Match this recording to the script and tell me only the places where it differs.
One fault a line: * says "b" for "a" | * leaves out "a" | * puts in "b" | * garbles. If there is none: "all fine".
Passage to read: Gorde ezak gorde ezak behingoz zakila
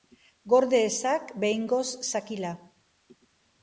* leaves out "gorde ezak"